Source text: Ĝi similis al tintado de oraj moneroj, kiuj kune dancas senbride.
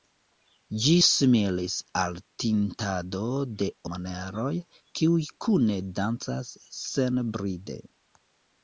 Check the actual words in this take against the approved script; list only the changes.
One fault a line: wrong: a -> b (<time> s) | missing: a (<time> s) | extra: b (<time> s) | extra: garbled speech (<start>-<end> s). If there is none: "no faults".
missing: oraj (3.7 s)